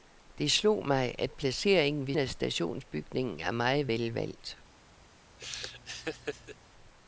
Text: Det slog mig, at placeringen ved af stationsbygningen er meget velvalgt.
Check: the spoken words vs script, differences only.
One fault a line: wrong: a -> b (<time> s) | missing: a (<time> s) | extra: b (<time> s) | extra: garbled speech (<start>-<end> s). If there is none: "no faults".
no faults